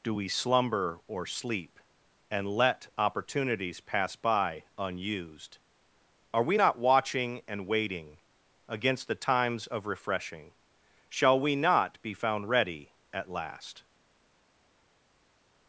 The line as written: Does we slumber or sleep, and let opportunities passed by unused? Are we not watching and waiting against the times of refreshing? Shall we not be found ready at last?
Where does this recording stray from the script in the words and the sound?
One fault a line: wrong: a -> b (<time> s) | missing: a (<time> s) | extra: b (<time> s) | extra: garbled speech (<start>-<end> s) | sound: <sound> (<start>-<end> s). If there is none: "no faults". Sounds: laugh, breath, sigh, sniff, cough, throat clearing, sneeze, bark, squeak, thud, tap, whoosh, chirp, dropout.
wrong: Does -> Do (0.0 s)
wrong: passed -> pass (3.8 s)